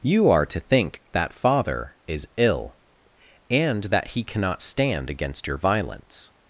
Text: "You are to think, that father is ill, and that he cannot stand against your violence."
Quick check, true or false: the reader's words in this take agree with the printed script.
true